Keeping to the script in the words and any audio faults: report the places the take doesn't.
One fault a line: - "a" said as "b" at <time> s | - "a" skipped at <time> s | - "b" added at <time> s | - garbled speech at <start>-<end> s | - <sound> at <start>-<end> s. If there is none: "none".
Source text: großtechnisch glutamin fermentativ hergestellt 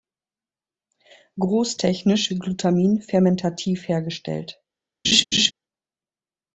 - laugh at 5.0-5.5 s